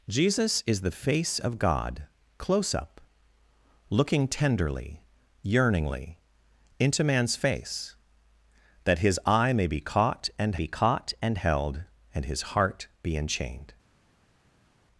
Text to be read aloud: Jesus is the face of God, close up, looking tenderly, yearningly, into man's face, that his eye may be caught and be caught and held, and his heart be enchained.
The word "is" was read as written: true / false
true